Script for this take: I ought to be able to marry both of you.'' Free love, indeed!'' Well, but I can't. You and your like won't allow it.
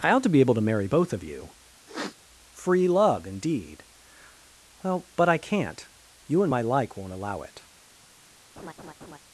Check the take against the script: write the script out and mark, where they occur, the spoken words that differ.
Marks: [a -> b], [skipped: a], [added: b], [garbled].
I ought to be able to marry both of you.'' Free love, indeed!'' Well, but I can't. You and [your -> my] like won't allow it.